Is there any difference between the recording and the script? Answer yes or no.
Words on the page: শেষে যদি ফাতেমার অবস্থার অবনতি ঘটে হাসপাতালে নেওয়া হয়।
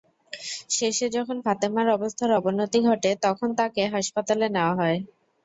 yes